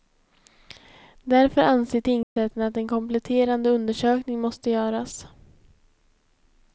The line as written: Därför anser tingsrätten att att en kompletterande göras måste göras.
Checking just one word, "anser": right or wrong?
right